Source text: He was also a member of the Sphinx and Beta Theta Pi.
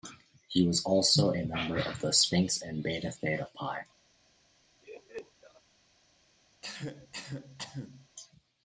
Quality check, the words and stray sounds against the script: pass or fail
fail